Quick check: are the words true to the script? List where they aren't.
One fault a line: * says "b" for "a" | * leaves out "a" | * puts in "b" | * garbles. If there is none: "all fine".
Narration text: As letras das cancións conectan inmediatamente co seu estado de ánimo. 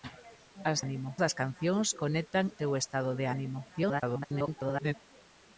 * says "ánimo" for "letras"
* leaves out "inmediatamente co"
* garbles